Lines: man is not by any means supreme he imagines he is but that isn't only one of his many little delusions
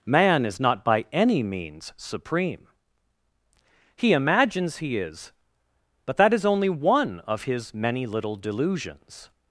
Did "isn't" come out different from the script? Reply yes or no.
yes